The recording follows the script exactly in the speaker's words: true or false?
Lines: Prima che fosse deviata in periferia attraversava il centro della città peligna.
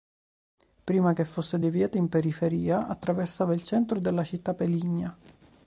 true